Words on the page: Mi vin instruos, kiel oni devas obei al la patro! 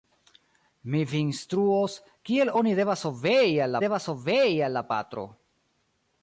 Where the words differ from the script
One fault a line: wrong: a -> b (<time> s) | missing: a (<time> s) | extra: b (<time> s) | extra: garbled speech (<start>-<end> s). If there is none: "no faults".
extra: devas obei al (3.8 s)